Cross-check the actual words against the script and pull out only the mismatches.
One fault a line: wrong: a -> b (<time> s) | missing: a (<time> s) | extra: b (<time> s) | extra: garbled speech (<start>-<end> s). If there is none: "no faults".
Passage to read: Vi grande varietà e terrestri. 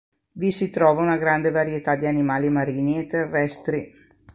extra: si trova una (0.5 s)
extra: di animali marini (1.9 s)